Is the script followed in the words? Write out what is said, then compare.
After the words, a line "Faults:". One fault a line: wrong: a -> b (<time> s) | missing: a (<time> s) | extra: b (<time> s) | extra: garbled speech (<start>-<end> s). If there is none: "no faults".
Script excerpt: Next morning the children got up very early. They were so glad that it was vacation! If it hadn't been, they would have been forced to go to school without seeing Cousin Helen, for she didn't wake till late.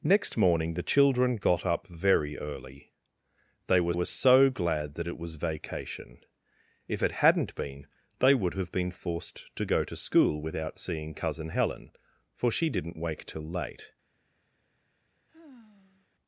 Next morning the children got up very early. They were were so glad that it was vacation! If it hadn't been, they would have been forced to go to school without seeing Cousin Helen, for she didn't wake till late.
Faults:
extra: were (3.9 s)